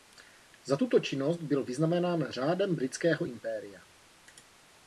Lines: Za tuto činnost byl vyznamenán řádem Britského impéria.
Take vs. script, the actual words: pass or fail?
pass